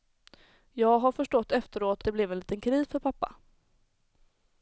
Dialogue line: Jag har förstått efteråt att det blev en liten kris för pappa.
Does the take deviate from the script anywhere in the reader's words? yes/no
yes